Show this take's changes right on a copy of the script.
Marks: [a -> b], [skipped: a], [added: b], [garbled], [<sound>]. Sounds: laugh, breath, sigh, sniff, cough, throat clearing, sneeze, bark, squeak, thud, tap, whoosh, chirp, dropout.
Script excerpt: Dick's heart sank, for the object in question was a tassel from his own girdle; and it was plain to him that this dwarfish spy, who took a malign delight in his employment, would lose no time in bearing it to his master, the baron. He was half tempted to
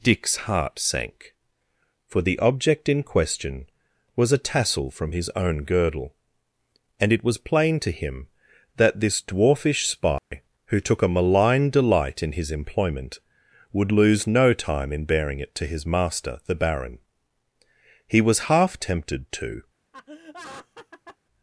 Dick's heart sank, for the object in question was a tassel from his own girdle; and it was plain to him that this dwarfish spy, [dropout] who took a malign delight in his employment, would lose no time in bearing it to his master, the baron. He was half tempted to [laugh]